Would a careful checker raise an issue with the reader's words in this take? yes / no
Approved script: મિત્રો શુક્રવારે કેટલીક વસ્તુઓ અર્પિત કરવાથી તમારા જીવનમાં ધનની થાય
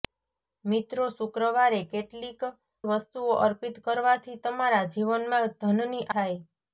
no